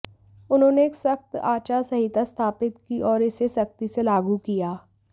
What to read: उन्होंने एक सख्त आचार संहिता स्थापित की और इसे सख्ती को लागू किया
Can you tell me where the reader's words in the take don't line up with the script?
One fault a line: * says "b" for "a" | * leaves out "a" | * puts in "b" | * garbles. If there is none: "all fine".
* says "से" for "को"